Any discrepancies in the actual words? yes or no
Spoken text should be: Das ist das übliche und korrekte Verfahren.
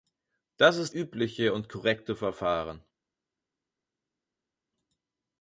yes